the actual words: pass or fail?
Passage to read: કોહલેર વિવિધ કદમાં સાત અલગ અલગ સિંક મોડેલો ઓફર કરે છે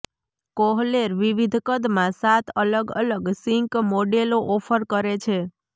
pass